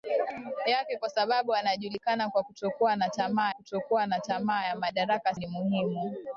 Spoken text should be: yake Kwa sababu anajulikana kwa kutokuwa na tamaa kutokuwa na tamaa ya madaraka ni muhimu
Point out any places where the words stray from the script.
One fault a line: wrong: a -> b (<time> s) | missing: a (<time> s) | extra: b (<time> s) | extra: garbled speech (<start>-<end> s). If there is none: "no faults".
no faults